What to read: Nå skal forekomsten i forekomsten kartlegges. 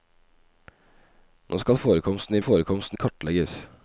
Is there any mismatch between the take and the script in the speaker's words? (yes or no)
no